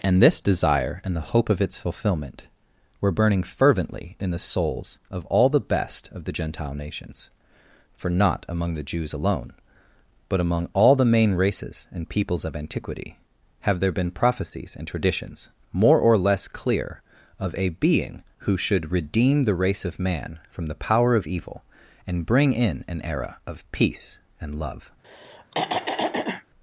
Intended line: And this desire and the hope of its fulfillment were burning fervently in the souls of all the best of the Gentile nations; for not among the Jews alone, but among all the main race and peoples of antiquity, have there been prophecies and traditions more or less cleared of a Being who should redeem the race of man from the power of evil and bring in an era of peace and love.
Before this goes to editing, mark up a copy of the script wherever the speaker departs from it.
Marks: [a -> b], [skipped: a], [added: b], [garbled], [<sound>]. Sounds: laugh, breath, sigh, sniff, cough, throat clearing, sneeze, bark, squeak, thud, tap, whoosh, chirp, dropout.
And this desire and the hope of its fulfillment were burning fervently in the souls of all the best of the Gentile nations; for not among the Jews alone, but among all the main [race -> races] and peoples of antiquity, have there been prophecies and traditions more or less [cleared -> clear] of a Being who should redeem the race of man from the power of evil and bring in an era of peace and love. [throat clearing]